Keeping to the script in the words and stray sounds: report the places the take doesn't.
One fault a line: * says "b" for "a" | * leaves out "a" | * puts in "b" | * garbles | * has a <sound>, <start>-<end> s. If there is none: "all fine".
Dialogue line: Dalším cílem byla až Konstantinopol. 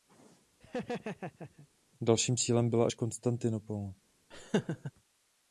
* has a laugh, 0.6-1.7 s
* has a laugh, 4.3-4.9 s